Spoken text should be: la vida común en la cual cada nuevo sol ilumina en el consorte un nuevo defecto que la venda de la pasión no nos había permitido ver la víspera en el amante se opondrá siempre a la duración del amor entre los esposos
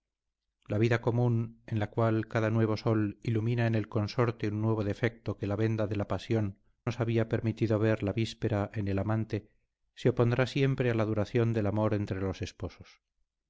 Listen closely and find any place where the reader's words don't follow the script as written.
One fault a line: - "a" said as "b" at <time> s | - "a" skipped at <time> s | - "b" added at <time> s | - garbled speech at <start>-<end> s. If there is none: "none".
- "no" skipped at 6.6 s